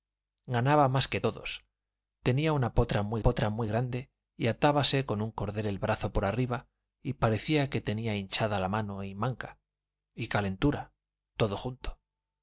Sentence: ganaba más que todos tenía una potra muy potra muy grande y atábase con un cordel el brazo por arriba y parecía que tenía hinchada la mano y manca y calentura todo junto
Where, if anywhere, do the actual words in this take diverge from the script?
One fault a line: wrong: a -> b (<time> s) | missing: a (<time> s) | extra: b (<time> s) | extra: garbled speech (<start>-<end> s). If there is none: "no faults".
no faults